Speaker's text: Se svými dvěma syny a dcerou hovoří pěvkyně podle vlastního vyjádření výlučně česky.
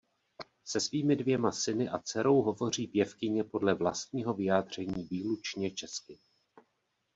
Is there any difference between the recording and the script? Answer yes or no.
no